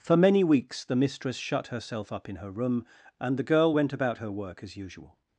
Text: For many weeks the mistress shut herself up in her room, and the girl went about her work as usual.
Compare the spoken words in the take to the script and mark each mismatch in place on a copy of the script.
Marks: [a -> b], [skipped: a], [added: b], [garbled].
For many weeks the mistress shut herself up in her room, and the girl went about her work as usual.